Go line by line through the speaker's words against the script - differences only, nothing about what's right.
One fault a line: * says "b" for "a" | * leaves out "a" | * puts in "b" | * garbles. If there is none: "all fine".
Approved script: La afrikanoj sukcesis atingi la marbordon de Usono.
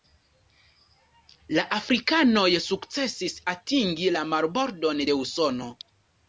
all fine